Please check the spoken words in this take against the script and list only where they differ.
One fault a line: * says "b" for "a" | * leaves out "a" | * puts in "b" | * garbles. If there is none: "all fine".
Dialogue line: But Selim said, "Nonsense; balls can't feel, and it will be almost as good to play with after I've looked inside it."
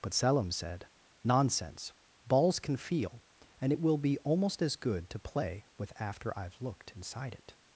* says "can" for "can't"